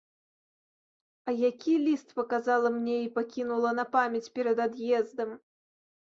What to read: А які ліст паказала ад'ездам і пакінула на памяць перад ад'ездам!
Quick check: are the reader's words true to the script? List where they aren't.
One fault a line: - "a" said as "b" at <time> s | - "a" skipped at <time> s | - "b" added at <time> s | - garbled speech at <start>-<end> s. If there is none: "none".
- "ад'ездам" said as "мне" at 2.8 s